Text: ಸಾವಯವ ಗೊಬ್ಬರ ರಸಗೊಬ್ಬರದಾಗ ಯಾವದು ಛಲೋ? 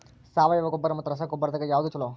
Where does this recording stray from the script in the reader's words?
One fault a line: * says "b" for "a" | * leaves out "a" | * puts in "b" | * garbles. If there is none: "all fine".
* puts in "ಮತ್ತ"